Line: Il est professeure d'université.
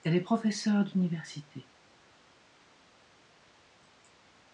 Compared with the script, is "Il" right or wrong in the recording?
wrong